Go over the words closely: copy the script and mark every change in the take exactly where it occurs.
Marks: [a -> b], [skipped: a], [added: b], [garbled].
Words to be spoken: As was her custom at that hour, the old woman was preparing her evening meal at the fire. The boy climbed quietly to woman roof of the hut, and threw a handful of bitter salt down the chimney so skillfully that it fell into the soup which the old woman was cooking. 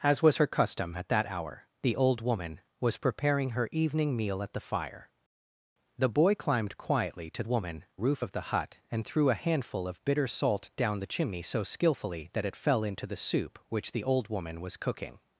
As was her custom at that hour, the old woman was preparing her evening meal at the fire. The boy climbed quietly to woman roof of the hut, and threw a handful of bitter salt down the chimney so skillfully that it fell into the soup which the old woman was cooking.